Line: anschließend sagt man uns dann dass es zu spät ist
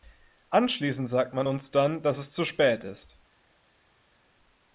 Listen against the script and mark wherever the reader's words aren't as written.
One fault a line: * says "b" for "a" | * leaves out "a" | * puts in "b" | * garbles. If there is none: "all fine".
all fine